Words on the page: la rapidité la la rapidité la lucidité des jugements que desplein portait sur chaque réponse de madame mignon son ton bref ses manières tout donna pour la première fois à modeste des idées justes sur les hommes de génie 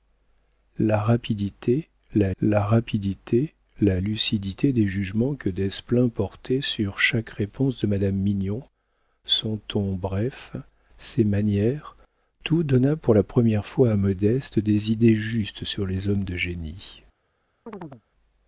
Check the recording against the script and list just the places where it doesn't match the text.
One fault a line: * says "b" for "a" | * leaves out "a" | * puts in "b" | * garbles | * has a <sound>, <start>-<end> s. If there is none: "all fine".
* has a chirp, 17.7-18.0 s